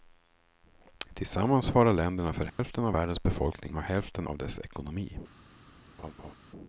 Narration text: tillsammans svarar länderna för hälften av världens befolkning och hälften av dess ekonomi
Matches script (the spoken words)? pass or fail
pass